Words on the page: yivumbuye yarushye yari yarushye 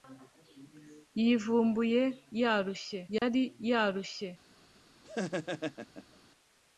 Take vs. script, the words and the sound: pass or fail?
fail